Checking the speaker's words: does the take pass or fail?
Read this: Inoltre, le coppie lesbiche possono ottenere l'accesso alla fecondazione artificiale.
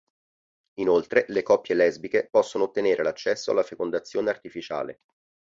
pass